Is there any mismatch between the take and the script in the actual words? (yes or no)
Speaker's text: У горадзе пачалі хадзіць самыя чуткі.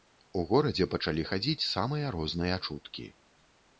yes